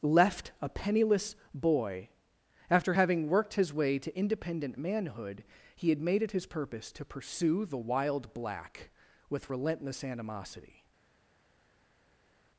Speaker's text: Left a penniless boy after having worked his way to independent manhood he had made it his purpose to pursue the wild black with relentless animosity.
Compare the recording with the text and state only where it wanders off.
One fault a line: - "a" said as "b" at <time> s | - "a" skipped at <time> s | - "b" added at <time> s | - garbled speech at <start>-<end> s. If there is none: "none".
none